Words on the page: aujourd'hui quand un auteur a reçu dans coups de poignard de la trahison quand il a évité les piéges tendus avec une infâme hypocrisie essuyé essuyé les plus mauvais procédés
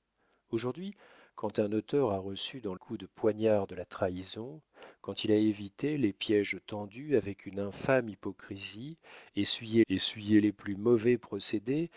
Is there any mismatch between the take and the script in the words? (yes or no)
no